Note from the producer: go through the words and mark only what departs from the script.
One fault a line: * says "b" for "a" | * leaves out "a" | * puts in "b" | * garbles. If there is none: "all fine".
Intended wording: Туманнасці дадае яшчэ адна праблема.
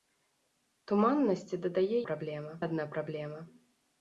* says "праблема" for "яшчэ"